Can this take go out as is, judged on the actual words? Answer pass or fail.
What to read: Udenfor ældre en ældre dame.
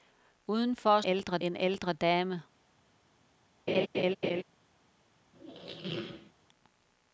pass